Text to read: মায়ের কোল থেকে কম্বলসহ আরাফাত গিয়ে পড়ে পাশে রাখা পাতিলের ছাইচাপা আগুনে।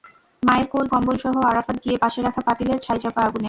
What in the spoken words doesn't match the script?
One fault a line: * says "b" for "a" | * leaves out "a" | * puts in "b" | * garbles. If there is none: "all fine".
* leaves out "থেকে"
* leaves out "পড়ে"